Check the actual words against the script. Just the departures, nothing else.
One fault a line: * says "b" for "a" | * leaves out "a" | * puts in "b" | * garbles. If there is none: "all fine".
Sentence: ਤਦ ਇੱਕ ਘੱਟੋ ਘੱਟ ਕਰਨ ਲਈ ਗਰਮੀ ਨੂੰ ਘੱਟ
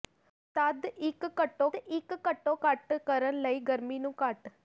* puts in "ਇੱਕ ਘੱਟੋ"